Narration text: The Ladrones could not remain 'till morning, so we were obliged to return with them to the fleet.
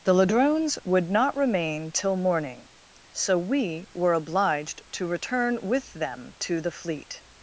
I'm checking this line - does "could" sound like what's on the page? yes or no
no